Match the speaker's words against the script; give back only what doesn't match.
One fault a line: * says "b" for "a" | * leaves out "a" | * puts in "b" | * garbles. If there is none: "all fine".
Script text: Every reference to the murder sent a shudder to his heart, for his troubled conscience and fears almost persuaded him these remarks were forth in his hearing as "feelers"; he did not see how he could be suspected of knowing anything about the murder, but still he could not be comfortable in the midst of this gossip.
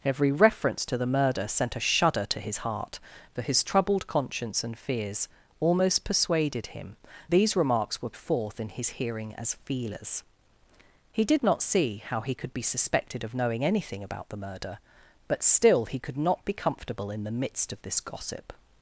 all fine